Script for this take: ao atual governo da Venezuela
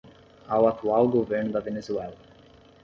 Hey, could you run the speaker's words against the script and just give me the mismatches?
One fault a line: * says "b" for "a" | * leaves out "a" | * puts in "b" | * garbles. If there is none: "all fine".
all fine